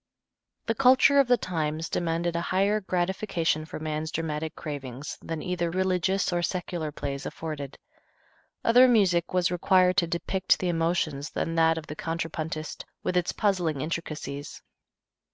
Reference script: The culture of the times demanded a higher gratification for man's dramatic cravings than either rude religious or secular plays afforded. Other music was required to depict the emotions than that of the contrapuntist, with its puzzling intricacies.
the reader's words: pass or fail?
fail